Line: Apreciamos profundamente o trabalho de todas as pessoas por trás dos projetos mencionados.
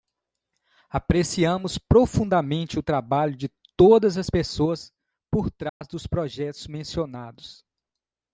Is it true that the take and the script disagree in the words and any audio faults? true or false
true